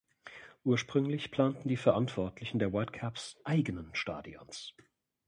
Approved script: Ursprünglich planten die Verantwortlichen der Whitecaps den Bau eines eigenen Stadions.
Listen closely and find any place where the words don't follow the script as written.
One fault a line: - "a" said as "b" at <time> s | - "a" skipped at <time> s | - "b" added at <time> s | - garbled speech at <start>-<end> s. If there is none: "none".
- "den Bau eines" skipped at 3.4 s